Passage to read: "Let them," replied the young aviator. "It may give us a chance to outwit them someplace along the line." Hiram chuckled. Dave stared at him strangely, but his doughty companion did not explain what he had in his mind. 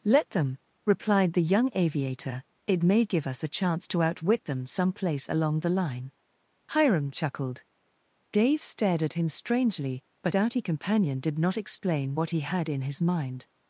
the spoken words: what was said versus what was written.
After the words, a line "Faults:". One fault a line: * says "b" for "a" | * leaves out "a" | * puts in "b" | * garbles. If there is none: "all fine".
"Let them," replied the young aviator. "It may give us a chance to outwit them someplace along the line." Hiram chuckled. Dave stared at him strangely, but doughty companion did not explain what he had in his mind.
Faults:
* leaves out "his"